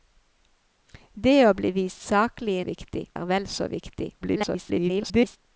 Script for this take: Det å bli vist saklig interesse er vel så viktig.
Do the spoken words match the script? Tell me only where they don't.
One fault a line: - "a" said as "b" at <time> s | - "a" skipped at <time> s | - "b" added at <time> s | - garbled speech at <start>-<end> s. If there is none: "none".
- "interesse" said as "viktig" at 2.7 s
- garbled speech at 4.2-5.4 s